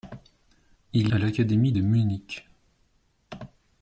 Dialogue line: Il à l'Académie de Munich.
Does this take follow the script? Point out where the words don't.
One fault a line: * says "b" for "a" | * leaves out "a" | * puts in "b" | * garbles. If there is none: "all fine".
all fine